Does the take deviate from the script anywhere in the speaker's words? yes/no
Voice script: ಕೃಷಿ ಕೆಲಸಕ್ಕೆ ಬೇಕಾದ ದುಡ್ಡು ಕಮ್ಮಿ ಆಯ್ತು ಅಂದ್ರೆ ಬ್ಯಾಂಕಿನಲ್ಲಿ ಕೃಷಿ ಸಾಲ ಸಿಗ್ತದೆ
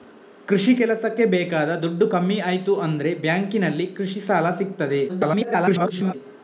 yes